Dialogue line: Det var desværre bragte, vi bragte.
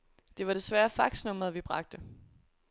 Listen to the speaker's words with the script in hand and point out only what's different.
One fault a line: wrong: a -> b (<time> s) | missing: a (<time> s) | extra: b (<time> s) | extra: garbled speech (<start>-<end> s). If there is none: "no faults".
wrong: bragte -> faxnummeret (0.9 s)